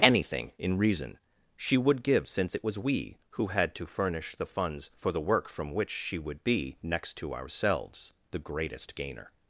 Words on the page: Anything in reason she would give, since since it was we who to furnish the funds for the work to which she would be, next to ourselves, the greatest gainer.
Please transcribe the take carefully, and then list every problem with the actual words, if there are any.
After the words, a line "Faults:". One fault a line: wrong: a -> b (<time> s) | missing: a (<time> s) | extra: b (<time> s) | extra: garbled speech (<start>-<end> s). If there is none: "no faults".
Anything in reason she would give, since it was we who had to furnish the funds for the work from which she would be, next to ourselves, the greatest gainer.
Faults:
missing: since (2.6 s)
extra: had (3.5 s)
wrong: to -> from (5.5 s)